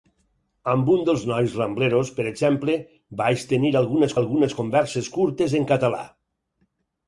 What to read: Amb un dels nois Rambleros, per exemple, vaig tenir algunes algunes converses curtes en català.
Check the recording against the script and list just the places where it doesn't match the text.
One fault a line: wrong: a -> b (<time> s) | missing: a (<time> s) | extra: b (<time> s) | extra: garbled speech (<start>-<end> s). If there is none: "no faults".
no faults